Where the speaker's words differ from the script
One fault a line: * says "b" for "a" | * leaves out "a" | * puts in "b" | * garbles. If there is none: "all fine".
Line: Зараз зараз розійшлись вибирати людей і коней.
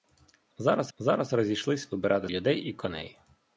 all fine